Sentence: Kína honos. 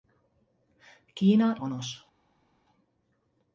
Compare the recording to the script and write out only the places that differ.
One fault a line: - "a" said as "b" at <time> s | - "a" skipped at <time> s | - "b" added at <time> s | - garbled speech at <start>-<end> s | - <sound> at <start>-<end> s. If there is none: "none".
none